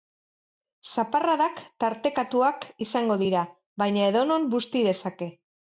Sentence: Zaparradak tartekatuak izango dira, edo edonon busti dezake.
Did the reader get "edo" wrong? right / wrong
wrong